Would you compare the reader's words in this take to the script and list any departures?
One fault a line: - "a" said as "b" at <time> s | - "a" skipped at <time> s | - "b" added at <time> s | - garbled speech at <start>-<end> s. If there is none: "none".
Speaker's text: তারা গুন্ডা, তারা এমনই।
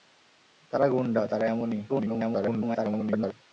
- garbled speech at 1.9-3.3 s